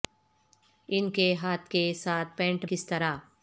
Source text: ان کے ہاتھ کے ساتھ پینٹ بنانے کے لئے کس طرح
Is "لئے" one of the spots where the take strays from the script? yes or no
yes